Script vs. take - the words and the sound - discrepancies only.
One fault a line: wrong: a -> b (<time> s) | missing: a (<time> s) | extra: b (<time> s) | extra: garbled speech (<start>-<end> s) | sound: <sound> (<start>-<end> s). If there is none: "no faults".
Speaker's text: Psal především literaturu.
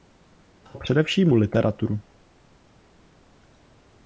no faults